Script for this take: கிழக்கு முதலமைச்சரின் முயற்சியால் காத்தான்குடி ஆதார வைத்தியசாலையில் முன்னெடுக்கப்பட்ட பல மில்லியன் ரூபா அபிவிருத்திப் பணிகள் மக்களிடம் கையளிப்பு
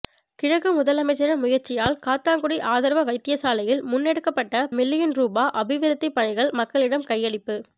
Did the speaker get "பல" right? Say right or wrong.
wrong